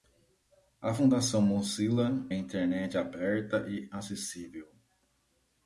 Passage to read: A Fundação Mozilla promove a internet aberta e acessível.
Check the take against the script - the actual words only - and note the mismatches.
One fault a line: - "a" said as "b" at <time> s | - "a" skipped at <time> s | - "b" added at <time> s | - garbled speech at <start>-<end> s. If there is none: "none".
- "promove" skipped at 2.1 s